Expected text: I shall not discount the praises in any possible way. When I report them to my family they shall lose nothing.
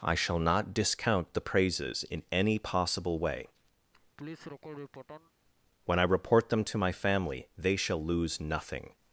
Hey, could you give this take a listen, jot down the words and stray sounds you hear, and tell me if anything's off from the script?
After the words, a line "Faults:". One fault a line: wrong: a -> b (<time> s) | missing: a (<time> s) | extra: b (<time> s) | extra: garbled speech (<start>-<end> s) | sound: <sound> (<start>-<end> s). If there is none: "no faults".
I shall not discount the praises in any possible way. When I report them to my family they shall lose nothing.
Faults:
sound: laugh (3.9-5.3 s)